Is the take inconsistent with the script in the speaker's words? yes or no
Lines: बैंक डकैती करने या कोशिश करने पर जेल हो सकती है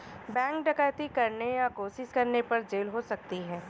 no